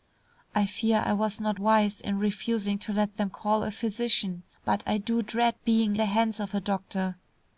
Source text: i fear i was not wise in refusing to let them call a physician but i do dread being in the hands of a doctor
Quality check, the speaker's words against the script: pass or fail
fail